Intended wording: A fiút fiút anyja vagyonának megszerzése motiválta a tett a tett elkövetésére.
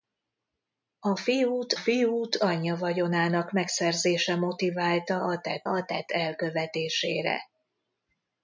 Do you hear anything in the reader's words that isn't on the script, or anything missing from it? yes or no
no